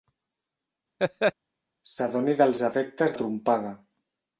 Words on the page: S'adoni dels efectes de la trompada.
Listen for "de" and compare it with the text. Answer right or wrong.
wrong